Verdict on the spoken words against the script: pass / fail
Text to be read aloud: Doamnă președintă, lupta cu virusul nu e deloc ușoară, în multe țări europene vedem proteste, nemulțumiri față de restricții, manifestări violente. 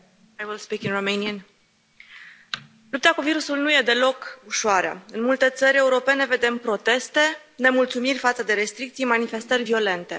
pass